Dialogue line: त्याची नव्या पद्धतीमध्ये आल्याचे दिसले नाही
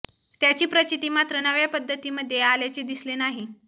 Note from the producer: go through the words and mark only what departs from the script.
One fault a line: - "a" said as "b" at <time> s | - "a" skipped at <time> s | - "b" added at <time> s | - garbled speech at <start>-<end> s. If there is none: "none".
- "प्रचिती मात्र" added at 0.7 s